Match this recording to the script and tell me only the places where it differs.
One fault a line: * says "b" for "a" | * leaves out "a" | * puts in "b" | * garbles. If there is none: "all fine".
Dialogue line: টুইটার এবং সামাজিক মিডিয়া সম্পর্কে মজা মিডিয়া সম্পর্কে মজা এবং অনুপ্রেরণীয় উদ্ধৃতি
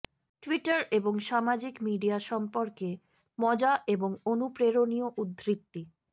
* leaves out "মিডিয়া সম্পর্কে মজা"